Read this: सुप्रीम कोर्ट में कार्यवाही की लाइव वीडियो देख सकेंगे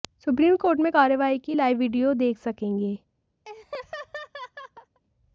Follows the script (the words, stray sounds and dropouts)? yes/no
no